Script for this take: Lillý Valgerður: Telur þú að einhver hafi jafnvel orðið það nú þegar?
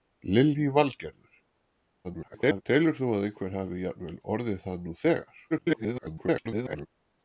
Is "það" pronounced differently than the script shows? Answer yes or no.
no